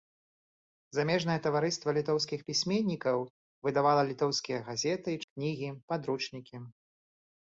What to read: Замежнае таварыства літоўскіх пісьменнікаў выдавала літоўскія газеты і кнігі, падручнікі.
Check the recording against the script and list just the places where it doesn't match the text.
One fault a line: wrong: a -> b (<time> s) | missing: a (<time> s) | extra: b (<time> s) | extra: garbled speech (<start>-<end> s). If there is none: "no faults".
no faults